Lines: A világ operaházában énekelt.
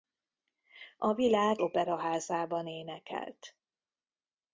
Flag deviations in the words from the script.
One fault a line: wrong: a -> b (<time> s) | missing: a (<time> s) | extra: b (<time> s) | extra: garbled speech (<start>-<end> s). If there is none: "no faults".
no faults